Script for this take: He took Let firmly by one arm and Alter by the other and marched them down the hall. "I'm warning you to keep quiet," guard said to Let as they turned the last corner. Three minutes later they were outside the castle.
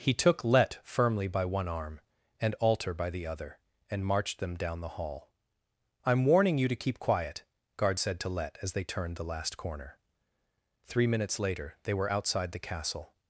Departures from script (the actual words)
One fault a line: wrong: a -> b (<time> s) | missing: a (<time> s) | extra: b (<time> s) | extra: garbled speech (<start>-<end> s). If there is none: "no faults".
no faults